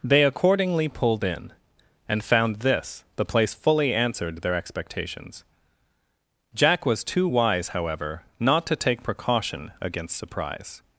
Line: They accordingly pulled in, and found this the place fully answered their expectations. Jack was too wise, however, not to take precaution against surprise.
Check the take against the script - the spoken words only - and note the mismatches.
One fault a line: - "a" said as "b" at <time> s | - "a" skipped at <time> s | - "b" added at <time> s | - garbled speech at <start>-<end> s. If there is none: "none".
none